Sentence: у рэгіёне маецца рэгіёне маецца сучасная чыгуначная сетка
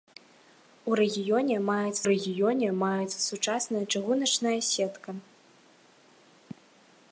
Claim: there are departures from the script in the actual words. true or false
false